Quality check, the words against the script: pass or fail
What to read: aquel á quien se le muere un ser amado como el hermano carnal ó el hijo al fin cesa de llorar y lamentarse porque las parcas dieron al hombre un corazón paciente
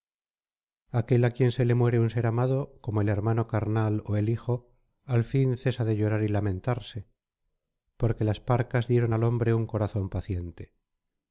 pass